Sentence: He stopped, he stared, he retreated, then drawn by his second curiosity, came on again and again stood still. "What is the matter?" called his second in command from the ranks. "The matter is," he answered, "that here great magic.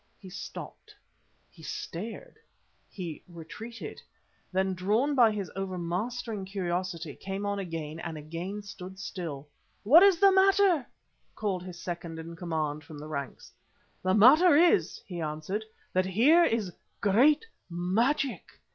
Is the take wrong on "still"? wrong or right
right